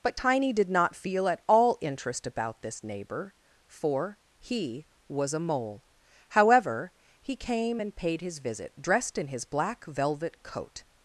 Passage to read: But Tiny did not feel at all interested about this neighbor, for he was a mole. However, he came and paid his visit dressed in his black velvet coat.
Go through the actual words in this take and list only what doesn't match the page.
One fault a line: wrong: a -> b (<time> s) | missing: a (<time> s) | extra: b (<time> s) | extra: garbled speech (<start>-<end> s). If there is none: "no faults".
wrong: interested -> interest (1.8 s)